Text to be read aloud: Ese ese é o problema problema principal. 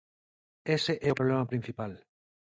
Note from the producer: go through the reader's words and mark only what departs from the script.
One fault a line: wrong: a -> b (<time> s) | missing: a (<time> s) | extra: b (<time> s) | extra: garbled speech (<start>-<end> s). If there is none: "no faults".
missing: ese (0.9 s)
missing: problema (1.5 s)